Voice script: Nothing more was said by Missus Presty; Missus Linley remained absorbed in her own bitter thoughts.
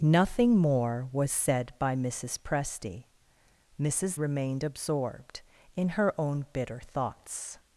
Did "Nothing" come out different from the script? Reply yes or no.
no